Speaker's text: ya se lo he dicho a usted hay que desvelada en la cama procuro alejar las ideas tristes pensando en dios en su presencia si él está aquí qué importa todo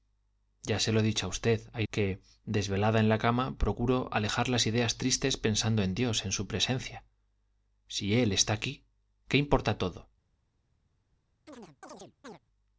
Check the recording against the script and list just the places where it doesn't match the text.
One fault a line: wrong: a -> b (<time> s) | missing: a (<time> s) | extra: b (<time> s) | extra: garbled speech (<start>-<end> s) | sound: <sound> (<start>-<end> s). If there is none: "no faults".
sound: chirp (11.5-12.4 s)